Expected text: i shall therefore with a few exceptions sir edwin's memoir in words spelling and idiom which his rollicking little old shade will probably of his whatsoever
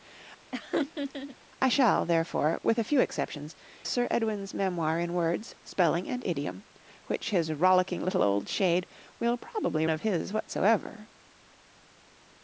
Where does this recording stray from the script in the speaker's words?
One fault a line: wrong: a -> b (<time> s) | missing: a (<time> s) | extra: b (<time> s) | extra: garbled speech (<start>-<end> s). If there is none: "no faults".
no faults